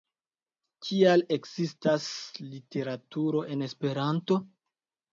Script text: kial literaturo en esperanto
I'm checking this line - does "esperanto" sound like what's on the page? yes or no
yes